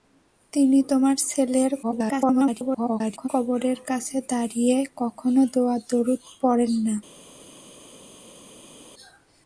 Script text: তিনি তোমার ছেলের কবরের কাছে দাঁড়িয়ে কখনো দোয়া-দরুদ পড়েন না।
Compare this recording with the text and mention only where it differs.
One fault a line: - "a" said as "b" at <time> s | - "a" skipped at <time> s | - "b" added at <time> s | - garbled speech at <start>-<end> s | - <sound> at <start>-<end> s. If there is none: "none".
- garbled speech at 1.8-3.3 s